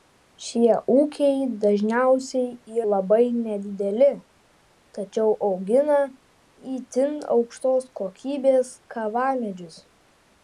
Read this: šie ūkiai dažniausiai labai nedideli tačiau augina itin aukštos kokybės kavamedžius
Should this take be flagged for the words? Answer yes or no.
no